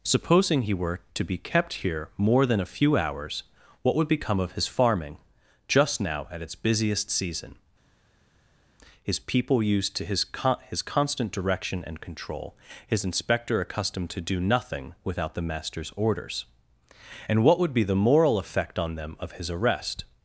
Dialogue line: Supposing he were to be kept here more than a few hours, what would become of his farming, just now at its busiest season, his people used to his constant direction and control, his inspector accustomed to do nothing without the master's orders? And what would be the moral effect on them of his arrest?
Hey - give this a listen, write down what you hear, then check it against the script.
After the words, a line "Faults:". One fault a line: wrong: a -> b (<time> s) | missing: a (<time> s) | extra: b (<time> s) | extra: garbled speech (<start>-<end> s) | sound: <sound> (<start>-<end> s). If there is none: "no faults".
Supposing he were to be kept here more than a few hours, what would become of his farming, just now at its busiest season, his people used to his con his constant direction and control, his inspector accustomed to do nothing without the master's orders? And what would be the moral effect on them of his arrest?
Faults:
extra: con his (10.2 s)